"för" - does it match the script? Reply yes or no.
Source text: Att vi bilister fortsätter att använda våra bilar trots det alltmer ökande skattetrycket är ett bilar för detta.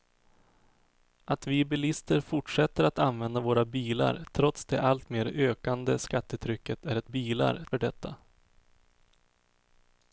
yes